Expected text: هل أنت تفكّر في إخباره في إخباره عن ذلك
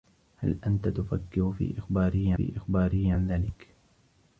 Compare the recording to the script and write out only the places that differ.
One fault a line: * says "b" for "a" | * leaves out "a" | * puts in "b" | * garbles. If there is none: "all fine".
all fine